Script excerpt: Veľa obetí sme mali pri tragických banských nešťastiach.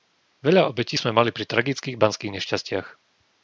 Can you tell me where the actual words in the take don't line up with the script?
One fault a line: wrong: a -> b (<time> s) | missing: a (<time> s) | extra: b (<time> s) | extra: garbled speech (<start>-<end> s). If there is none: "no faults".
no faults